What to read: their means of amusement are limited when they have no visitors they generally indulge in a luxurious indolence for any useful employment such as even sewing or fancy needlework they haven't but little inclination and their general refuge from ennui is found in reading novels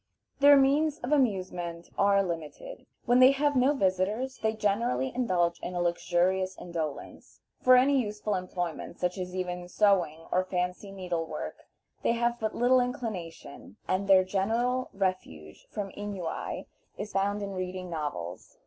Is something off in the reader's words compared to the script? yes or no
yes